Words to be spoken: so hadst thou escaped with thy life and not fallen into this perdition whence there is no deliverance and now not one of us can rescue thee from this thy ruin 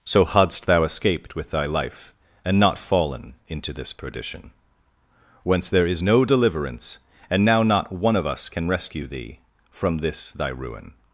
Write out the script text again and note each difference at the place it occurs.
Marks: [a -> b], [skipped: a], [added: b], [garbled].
so hadst thou escaped with thy life and not fallen into this perdition whence there is no deliverance and now not one of us can rescue thee from this thy ruin